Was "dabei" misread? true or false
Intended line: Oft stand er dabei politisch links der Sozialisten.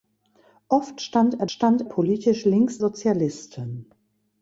true